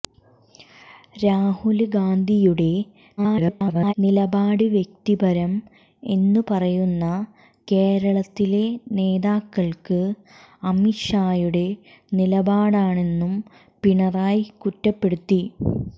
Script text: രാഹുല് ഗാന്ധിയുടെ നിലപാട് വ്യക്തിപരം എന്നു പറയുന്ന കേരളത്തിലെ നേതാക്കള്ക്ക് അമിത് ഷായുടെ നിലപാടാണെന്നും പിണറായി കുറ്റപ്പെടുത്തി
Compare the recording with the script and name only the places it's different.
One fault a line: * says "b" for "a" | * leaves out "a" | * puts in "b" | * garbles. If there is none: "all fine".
* garbles